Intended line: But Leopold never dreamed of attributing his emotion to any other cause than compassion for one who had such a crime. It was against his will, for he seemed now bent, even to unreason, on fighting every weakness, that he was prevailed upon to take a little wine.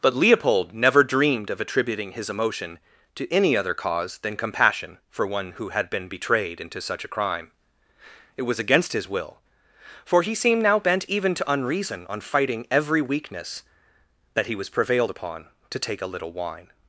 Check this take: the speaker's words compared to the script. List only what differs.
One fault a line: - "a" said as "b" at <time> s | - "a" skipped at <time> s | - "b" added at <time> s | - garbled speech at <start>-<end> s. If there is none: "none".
- "been betrayed into" added at 5.9 s